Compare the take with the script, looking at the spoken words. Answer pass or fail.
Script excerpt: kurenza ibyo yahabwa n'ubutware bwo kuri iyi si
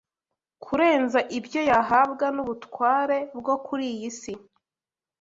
pass